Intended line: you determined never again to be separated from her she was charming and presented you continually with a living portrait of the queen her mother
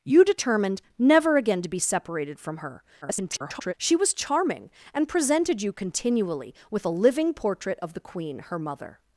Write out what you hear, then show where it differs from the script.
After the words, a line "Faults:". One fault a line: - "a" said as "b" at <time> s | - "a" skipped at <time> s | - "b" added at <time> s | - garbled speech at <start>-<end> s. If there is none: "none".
you determined never again to be separated from her [garbled] she was charming and presented you continually with a living portrait of the queen her mother
Faults:
- garbled speech at 3.0-3.7 s